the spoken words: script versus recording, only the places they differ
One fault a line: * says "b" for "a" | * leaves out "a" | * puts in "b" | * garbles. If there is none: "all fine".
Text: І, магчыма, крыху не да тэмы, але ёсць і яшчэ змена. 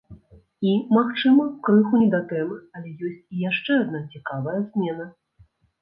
* puts in "адна цікавая"